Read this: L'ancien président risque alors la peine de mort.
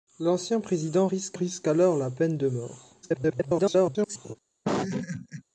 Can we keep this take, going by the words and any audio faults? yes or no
no